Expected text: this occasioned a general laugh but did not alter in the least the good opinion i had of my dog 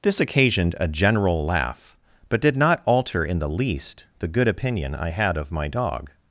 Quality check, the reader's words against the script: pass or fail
pass